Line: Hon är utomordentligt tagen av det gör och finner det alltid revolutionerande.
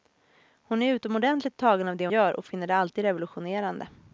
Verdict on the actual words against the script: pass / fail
pass